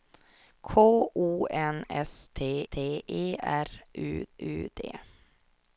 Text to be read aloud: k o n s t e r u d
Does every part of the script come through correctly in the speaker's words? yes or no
no